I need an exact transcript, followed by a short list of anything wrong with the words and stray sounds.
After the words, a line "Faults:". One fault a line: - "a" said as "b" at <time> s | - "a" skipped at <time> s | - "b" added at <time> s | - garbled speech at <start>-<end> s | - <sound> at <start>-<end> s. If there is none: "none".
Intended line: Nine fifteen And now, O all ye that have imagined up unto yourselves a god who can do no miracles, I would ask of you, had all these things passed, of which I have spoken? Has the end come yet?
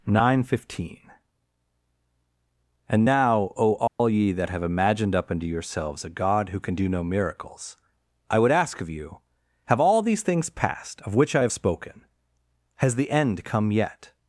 Nine fifteen And now, O all ye that have imagined up unto yourselves a god who can do no miracles, I would ask of you, have all these things passed, of which I have spoken? Has the end come yet?
Faults:
- dropout at 3.9-4.0 s
- "had" said as "have" at 9.6 s